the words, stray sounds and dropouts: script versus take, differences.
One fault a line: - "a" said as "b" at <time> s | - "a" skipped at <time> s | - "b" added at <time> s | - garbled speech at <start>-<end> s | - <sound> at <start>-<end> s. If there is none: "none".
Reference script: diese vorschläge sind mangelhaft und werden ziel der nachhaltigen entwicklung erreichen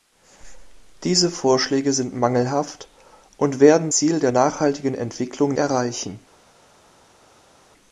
none